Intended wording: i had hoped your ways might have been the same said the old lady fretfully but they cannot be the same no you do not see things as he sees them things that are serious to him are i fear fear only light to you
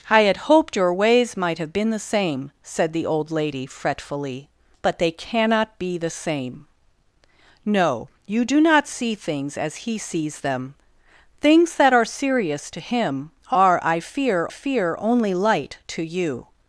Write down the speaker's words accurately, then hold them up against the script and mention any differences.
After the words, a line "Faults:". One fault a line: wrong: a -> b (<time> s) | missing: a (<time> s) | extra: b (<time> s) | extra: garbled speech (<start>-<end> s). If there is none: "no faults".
i had hoped your ways might have been the same said the old lady fretfully but they cannot be the same no you do not see things as he sees them things that are serious to him are i fear fear only light to you
Faults:
no faults